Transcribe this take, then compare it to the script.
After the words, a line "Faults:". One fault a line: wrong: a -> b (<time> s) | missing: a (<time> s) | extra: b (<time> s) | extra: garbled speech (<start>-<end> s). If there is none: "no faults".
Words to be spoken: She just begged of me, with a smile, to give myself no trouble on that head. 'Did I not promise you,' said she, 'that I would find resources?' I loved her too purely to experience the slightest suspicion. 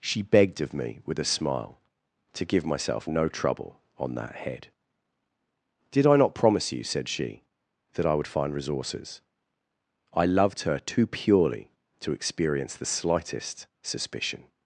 She begged of me, with a smile, to give myself no trouble on that head. 'Did I not promise you,' said she, 'that I would find resources?' I loved her too purely to experience the slightest suspicion.
Faults:
missing: just (0.2 s)